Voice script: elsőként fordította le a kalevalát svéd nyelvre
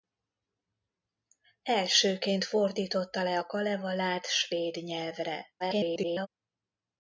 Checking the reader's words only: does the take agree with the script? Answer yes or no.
no